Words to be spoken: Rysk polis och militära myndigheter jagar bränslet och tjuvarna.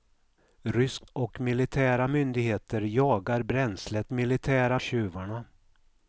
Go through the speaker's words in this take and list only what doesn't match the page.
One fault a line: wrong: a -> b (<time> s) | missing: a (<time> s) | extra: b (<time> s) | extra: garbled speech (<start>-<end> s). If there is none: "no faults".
missing: polis (1.1 s)
wrong: och -> militära (4.1 s)